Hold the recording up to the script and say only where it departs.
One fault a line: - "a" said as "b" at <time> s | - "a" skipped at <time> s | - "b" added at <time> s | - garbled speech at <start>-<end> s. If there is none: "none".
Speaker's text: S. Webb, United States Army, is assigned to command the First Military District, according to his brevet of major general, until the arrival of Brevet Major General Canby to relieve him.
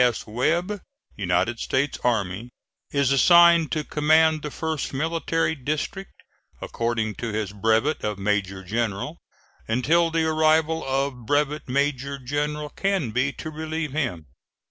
none